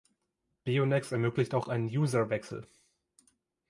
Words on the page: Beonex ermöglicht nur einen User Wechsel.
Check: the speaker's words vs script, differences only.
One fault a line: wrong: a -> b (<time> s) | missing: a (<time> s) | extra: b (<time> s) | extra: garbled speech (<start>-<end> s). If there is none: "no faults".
wrong: nur -> auch (1.5 s)